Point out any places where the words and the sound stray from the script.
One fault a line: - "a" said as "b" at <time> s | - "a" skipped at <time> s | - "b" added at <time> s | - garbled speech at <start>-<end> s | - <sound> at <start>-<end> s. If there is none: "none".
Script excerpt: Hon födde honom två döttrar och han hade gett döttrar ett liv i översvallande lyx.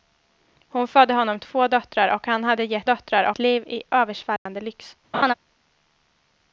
- dropout at 4.4-4.5 s
- laugh at 5.1-5.3 s